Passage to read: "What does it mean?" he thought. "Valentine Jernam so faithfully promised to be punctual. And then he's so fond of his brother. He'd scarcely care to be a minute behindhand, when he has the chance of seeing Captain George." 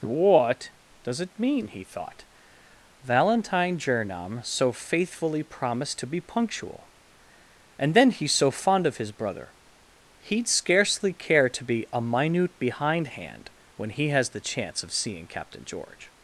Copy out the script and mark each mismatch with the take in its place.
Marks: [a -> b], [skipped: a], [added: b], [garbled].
"What does it mean?" he thought. "Valentine Jernam so faithfully promised to be punctual. And then he's so fond of his brother. He'd scarcely care to be a minute behindhand, when he has the chance of seeing Captain George."